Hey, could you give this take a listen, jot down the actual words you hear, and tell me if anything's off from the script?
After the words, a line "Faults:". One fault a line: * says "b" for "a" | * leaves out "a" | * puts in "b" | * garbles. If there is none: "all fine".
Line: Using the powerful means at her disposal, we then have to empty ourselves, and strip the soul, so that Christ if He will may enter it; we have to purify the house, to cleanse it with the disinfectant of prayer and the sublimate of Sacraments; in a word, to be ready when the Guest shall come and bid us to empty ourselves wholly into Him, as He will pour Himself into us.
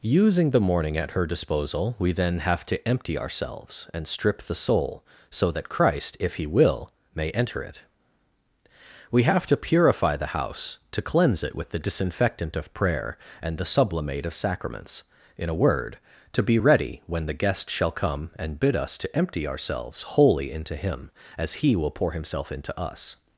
Using the morning at her disposal, we then have to empty ourselves, and strip the soul, so that Christ if He will may enter it; we have to purify the house, to cleanse it with the disinfectant of prayer and the sublimate of Sacraments; in a word, to be ready when the Guest shall come and bid us to empty ourselves wholly into Him, as He will pour Himself into us.
Faults:
* says "morning" for "powerful means"